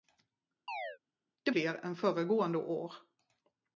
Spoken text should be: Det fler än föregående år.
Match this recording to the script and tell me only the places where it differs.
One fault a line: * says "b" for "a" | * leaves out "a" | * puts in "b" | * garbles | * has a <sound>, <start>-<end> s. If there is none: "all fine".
* has a chirp, 0.7-1.0 s